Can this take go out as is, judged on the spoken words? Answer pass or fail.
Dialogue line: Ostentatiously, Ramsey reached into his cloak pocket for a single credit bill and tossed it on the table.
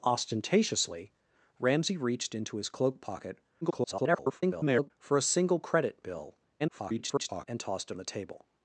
fail